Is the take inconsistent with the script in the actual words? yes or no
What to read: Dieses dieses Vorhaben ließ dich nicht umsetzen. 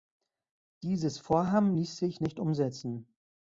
yes